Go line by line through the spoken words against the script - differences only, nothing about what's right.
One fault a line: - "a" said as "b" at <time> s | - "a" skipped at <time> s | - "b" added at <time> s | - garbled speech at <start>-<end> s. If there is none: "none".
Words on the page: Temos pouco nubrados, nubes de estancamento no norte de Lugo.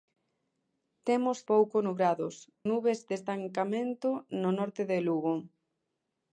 none